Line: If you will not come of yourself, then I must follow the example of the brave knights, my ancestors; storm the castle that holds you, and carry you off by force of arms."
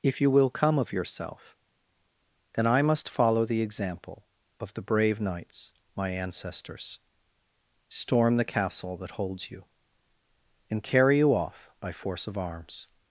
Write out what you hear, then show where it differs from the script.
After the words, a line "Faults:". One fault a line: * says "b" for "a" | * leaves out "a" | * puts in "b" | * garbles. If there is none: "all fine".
If you will come of yourself, then I must follow the example of the brave knights, my ancestors; storm the castle that holds you, and carry you off by force of arms."
Faults:
* leaves out "not"